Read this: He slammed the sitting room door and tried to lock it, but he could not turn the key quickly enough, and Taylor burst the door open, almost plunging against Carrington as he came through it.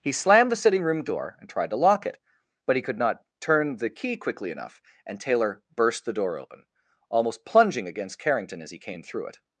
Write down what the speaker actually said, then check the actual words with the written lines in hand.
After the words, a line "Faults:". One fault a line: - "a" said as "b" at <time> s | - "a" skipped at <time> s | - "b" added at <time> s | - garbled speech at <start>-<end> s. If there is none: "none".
He slammed the sitting room door and tried to lock it, but he could not turn the key quickly enough, and Taylor burst the door open, almost plunging against Carrington as he came through it.
Faults:
none